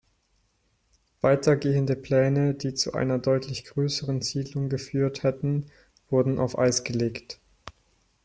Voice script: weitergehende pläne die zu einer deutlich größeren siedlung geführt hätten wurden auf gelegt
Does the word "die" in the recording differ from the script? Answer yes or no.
no